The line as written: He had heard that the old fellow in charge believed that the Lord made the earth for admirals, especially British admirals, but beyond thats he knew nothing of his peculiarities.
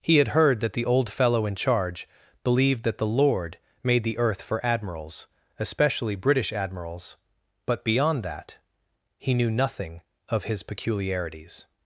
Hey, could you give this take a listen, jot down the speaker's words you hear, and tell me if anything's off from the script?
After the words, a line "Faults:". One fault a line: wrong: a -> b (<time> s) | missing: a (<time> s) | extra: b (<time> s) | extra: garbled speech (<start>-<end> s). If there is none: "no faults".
He had heard that the old fellow in charge believed that the Lord made the earth for admirals, especially British admirals, but beyond that he knew nothing of his peculiarities.
Faults:
wrong: thats -> that (8.2 s)